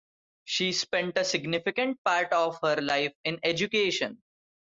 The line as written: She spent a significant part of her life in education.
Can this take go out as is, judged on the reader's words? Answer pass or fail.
pass